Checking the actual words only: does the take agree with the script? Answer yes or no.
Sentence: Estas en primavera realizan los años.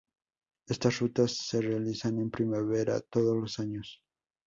no